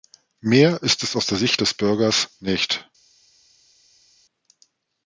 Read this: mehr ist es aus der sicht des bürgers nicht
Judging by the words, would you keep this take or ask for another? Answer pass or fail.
pass